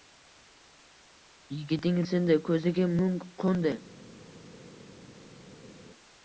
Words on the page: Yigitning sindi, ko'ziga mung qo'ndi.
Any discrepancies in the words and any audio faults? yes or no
no